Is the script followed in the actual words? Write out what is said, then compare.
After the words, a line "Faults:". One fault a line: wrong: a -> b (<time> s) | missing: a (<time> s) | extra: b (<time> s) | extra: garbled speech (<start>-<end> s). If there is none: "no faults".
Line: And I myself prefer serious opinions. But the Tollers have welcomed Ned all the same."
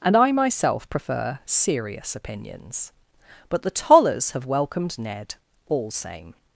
And I myself prefer serious opinions. But the Tollers have welcomed Ned all same."
Faults:
missing: the (5.9 s)